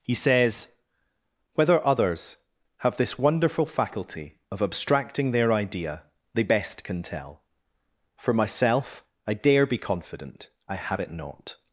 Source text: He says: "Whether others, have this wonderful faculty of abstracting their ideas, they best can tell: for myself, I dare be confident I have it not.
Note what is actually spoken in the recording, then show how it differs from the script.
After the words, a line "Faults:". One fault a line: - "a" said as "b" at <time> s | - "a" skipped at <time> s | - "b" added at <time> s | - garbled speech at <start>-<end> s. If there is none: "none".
He says: "Whether others, have this wonderful faculty of abstracting their idea, they best can tell: for myself, I dare be confident I have it not.
Faults:
- "ideas" said as "idea" at 5.5 s